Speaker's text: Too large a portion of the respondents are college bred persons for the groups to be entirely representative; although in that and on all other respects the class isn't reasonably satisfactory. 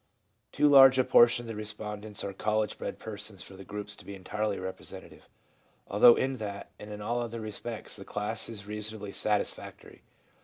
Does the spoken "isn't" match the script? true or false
false